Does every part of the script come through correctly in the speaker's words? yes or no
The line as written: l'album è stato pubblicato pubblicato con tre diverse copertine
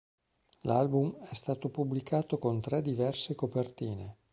no